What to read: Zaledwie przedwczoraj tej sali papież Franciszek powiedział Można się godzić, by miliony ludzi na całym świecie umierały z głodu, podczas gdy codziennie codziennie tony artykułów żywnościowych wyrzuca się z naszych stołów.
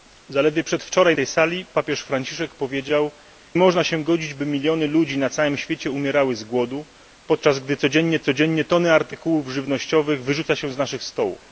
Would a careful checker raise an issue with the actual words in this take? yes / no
no